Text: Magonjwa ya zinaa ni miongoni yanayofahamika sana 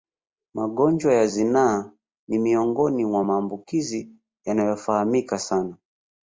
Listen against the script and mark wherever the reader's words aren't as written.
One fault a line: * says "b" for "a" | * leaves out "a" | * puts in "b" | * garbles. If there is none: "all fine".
* puts in "mwa maambukizi"